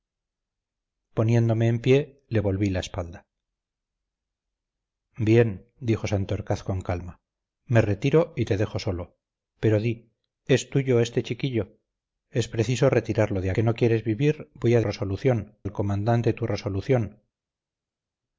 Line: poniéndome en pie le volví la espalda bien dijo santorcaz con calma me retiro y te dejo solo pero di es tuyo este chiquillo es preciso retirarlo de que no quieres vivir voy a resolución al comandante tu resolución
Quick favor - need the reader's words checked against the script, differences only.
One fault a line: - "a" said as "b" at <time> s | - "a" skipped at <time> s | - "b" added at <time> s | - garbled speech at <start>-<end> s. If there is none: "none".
none